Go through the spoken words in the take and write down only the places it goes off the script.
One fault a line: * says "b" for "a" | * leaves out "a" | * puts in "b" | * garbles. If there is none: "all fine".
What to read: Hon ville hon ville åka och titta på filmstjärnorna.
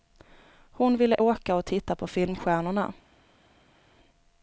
* leaves out "hon ville"